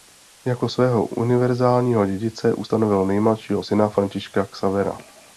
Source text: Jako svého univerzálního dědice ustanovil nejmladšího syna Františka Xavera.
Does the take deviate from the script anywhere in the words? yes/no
no